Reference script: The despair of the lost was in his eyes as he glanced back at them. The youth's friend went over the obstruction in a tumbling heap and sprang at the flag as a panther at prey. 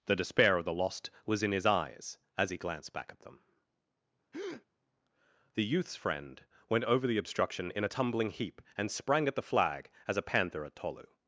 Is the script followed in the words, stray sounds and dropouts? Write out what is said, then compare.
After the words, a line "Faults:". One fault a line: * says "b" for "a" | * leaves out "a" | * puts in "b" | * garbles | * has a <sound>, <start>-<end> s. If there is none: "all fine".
The despair of the lost was in his eyes as he glanced back at them. The youth's friend went over the obstruction in a tumbling heap and sprang at the flag as a panther at tolu.
Faults:
* has a breath, 4.3-4.7 s
* says "tolu" for "prey"